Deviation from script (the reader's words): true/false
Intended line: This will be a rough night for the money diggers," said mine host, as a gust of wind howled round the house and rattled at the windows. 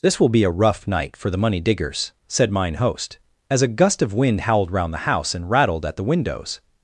false